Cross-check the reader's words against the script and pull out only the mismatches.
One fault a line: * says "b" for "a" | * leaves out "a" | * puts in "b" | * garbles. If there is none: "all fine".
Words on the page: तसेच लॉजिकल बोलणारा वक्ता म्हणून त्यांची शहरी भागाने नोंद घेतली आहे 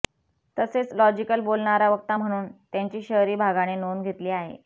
all fine